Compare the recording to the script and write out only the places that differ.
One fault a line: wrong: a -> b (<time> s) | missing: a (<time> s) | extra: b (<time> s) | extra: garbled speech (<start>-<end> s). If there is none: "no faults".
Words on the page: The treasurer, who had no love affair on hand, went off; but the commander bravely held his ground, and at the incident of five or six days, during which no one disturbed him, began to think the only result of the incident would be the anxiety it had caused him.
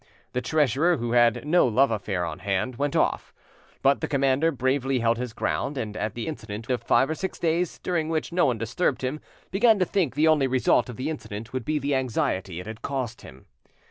no faults